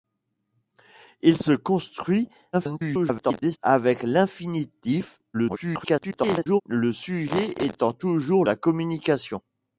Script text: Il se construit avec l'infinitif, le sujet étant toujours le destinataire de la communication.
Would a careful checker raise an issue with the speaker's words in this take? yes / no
yes